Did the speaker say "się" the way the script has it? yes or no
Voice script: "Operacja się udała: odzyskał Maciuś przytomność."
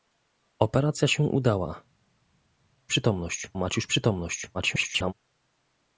yes